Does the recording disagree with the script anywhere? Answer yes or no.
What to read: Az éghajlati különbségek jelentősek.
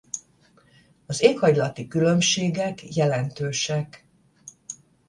no